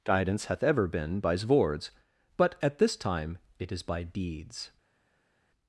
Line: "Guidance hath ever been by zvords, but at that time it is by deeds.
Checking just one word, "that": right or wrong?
wrong